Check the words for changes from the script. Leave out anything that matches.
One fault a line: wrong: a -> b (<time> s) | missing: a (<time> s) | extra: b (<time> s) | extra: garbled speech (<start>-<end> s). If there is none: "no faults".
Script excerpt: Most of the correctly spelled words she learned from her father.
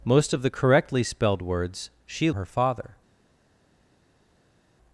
missing: learned from (2.3 s)